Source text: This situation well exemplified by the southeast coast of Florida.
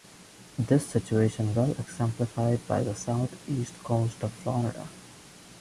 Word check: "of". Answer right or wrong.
right